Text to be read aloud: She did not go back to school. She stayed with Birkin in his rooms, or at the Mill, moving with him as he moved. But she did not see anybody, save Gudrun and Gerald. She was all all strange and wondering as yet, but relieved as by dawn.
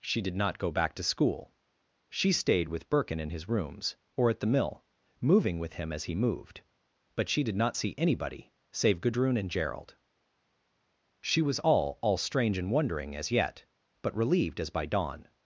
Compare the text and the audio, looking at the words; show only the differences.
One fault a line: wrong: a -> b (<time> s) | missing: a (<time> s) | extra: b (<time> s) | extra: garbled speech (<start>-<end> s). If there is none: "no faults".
no faults